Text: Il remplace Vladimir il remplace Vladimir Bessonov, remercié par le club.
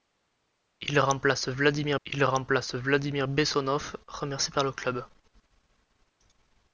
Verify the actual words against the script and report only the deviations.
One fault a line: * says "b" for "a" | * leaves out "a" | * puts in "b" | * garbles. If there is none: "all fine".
all fine